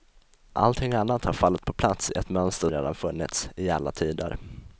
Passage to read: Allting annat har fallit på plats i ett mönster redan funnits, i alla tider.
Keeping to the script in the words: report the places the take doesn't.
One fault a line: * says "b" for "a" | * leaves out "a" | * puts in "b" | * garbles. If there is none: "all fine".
all fine